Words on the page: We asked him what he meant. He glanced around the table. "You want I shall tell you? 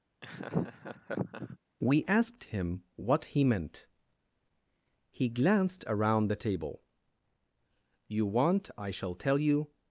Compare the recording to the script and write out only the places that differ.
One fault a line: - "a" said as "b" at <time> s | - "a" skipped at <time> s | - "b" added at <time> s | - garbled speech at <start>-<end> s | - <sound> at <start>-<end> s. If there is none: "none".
- laugh at 0.2-1.6 s